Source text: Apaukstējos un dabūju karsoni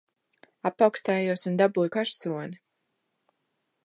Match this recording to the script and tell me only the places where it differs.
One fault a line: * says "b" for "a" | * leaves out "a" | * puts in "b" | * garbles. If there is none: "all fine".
all fine